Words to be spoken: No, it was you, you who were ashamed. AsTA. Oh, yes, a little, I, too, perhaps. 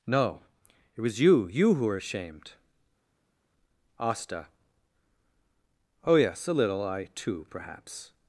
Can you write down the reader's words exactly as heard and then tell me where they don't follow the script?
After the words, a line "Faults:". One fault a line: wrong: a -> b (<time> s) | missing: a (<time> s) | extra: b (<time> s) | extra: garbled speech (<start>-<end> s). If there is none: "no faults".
No, it was you, you who were ashamed. AsTA. Oh, yes, a little, I, too, perhaps.
Faults:
no faults